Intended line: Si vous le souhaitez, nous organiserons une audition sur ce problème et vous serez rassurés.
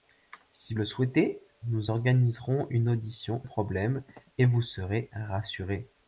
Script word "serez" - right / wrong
right